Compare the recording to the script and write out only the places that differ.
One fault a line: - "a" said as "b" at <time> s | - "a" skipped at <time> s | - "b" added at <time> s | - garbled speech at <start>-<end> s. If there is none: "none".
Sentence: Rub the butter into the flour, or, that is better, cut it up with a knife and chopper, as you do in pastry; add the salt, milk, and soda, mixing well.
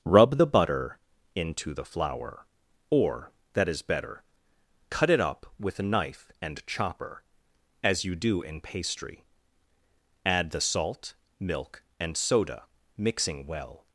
none